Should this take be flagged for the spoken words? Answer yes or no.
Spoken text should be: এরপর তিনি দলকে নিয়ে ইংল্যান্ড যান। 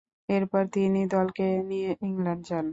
no